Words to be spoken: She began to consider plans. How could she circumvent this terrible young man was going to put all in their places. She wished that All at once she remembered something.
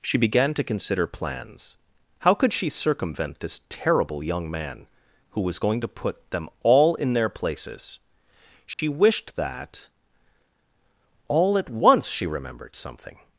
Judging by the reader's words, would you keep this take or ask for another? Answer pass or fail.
fail